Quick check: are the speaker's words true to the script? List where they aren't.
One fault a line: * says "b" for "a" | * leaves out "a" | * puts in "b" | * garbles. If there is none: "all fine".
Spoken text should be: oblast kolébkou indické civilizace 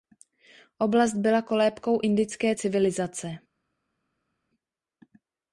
* puts in "byla"